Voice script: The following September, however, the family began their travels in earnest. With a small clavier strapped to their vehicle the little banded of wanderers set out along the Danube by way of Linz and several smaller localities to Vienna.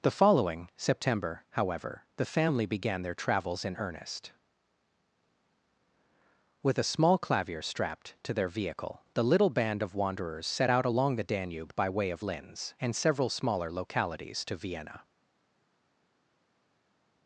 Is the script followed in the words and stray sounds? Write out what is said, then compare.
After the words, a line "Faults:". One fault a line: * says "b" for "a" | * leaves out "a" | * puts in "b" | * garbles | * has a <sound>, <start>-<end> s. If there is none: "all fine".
The following September, however, the family began their travels in earnest. With a small clavier strapped to their vehicle the little band of wanderers set out along the Danube by way of Linz and several smaller localities to Vienna.
Faults:
* says "band" for "banded"